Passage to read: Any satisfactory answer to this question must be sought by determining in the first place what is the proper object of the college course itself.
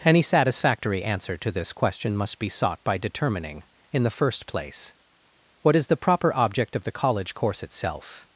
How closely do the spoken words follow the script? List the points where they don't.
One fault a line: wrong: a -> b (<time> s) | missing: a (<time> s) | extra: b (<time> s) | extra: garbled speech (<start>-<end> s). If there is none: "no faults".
no faults